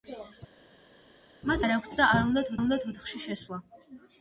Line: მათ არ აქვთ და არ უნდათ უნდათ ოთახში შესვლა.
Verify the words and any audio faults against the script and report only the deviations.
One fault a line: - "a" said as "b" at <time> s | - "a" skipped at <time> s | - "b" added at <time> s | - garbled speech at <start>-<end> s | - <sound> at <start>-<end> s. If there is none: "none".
none